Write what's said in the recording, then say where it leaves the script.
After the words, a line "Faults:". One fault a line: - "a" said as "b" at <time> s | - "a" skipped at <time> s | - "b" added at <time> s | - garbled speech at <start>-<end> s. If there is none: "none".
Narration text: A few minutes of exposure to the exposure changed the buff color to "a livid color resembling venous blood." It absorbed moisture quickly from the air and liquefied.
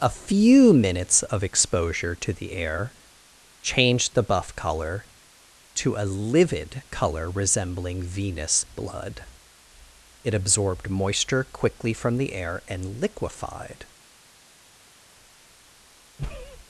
A few minutes of exposure to the air changed the buff color to "a livid color resembling venous blood." It absorbed moisture quickly from the air and liquefied.
Faults:
- "exposure" said as "air" at 2.5 s